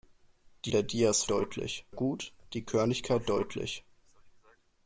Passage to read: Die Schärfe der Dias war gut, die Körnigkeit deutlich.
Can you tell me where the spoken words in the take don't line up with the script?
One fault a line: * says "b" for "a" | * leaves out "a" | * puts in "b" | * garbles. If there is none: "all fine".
* leaves out "Schärfe"
* says "deutlich" for "war"